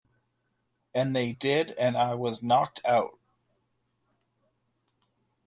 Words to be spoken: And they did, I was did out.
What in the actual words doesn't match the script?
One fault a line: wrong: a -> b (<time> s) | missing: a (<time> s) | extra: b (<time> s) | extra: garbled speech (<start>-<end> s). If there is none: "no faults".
extra: and (1.8 s)
wrong: did -> knocked (2.4 s)